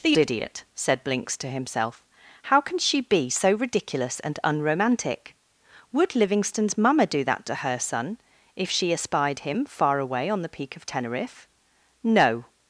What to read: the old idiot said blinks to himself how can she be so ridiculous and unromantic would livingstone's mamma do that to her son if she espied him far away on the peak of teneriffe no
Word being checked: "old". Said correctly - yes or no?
no